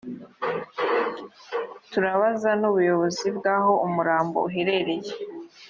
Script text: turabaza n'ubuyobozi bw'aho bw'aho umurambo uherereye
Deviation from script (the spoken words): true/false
true